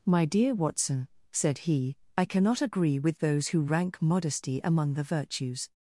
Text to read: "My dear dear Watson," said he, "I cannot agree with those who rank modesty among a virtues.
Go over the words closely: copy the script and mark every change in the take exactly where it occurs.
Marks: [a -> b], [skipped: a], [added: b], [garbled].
"My dear [skipped: dear] Watson," said he, "I cannot agree with those who rank modesty among [a -> the] virtues.